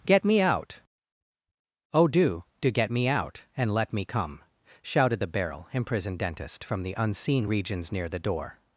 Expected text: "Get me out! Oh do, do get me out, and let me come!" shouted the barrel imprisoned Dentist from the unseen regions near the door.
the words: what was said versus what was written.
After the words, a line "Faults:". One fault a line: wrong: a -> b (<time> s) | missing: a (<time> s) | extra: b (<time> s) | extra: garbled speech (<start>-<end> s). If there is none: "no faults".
"Get me out! Oh do, do get me out, and let me come!" shouted the barrel imprisoned Dentist from the unseen regions near the door.
Faults:
no faults